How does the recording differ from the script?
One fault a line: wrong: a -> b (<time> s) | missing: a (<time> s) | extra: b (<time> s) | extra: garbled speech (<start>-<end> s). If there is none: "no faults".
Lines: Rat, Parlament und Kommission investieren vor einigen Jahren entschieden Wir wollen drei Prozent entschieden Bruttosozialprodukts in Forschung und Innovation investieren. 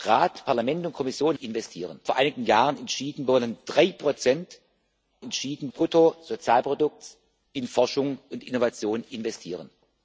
no faults